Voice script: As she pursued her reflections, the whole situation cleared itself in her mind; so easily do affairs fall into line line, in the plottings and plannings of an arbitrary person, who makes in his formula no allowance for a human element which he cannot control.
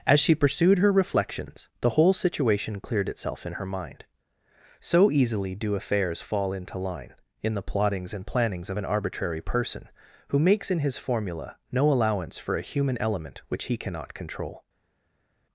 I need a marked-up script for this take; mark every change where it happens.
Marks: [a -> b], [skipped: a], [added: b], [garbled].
As she pursued her reflections, the whole situation cleared itself in her mind; so easily do affairs fall into line [skipped: line,] in the plottings and plannings of an arbitrary person, who makes in his formula no allowance for a human element which he cannot control.